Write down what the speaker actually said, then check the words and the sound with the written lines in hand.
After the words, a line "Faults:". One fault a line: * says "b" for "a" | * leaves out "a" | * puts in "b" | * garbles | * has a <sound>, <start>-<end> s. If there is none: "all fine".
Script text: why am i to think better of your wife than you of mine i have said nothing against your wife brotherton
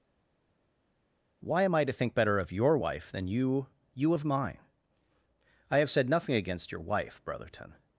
why am i to think better of your wife than you you of mine i have said nothing against your wife brotherton
Faults:
* puts in "you"